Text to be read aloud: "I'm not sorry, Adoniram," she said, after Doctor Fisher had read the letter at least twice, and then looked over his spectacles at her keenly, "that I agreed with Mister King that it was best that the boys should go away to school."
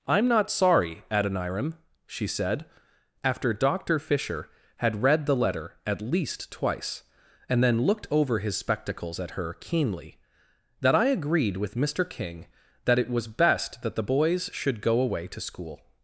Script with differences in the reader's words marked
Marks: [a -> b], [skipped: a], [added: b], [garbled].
"I'm not sorry, Adoniram," she said, after Doctor Fisher had read the letter at least twice, and then looked over his spectacles at her keenly, "that I agreed with Mister King that it was best that the boys should go away to school."